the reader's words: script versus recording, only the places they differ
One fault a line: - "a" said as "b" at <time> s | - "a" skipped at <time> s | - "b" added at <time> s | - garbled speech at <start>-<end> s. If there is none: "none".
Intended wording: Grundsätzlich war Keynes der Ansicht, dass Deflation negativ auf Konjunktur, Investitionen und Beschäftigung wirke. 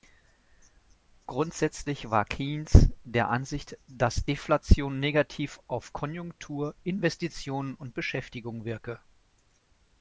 none